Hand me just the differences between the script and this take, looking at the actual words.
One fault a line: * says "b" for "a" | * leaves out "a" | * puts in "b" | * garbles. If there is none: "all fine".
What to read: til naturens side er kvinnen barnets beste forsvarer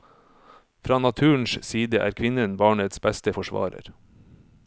* says "fra" for "til"